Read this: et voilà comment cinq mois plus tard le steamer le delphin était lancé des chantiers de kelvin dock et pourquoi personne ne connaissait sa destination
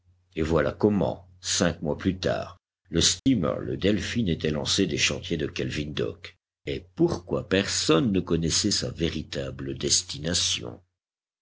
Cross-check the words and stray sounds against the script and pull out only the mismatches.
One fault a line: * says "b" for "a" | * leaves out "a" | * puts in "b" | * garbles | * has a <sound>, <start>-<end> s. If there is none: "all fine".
* has a dropout, 3.2-3.3 s
* puts in "véritable"